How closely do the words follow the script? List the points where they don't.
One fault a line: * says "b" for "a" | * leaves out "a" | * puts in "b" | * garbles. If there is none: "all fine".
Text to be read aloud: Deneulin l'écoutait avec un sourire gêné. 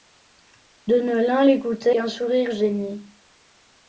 * leaves out "avec"